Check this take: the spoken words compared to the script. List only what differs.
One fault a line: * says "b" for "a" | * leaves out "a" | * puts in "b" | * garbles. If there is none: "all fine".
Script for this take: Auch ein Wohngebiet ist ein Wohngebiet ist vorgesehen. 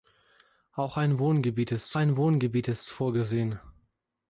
all fine